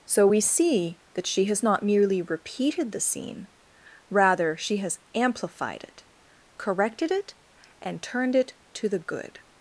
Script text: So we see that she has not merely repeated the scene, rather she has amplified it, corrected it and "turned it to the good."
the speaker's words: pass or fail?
pass